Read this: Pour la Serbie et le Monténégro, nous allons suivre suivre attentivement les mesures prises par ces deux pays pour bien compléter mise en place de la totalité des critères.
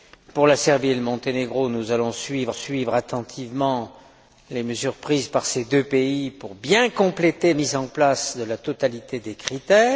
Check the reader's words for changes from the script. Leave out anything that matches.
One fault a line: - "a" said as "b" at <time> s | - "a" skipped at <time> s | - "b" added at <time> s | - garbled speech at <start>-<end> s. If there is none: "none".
none